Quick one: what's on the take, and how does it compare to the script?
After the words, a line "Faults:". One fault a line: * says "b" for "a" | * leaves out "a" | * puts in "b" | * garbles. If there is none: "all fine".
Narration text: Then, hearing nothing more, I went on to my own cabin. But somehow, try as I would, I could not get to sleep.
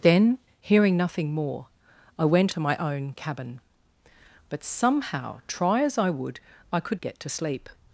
Then, hearing nothing more, I went to my own cabin. But somehow, try as I would, I could get to sleep.
Faults:
* leaves out "on"
* leaves out "not"